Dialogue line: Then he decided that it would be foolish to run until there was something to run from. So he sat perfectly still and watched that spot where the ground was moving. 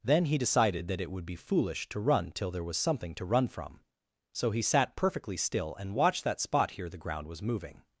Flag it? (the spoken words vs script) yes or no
yes